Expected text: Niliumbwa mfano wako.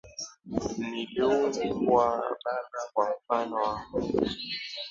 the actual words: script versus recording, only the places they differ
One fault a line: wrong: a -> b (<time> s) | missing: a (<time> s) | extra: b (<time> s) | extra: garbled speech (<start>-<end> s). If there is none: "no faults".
extra: baba kwa (2.4 s)